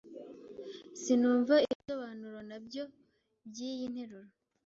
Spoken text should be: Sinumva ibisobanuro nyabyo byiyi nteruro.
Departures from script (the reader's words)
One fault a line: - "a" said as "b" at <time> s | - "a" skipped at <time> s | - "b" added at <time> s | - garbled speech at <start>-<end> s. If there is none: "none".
none